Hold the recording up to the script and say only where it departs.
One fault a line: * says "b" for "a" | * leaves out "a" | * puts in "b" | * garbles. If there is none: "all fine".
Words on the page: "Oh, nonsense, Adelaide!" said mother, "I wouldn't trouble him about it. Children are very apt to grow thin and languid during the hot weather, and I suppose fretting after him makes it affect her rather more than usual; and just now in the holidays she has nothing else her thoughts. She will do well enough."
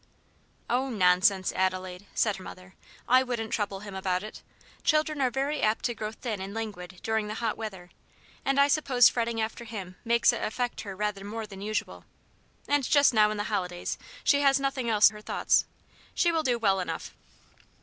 all fine